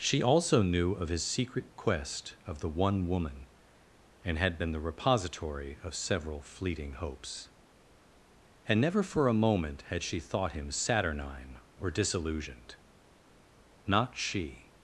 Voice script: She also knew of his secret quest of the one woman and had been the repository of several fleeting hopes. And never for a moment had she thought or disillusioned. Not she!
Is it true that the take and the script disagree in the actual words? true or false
true